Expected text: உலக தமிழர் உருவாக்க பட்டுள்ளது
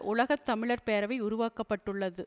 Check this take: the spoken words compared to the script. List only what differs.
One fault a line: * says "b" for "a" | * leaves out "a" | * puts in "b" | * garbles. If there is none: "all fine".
* puts in "பேரவை"